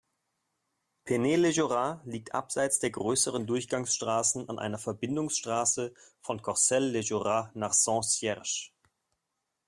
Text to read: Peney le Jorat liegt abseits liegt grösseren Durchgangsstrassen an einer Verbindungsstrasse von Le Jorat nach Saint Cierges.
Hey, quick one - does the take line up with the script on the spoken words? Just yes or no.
no